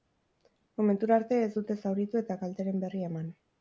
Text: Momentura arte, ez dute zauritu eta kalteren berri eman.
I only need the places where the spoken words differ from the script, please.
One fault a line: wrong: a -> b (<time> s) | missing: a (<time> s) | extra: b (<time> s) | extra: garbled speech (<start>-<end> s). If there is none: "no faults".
no faults